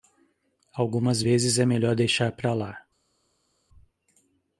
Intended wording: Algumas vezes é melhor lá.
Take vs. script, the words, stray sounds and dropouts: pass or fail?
fail